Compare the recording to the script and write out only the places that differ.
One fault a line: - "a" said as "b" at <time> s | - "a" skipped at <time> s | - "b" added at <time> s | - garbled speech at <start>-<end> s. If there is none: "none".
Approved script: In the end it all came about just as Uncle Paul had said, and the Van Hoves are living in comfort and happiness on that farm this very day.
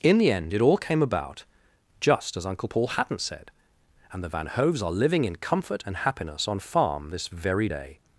- "had" said as "hadn't" at 2.9 s
- "that" skipped at 6.6 s